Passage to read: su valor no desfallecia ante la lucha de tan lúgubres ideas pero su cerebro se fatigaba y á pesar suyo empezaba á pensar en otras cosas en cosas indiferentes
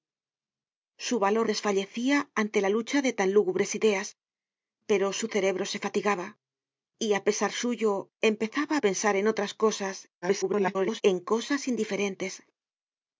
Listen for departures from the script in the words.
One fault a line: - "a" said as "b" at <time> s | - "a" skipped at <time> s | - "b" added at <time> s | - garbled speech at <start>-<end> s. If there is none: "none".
- "no" skipped at 1.5 s
- garbled speech at 10.2-11.0 s